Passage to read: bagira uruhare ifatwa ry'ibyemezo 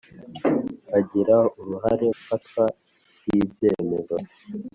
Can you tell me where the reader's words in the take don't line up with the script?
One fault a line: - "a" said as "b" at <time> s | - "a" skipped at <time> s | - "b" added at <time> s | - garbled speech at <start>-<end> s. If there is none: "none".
none